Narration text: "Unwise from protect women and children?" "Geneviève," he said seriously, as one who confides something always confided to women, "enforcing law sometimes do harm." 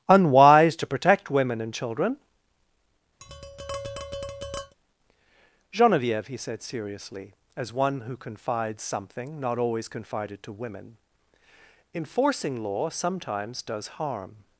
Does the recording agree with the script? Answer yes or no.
no